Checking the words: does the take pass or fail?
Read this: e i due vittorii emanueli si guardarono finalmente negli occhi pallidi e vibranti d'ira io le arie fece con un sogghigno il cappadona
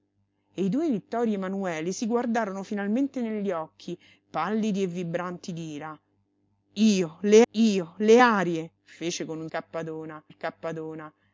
fail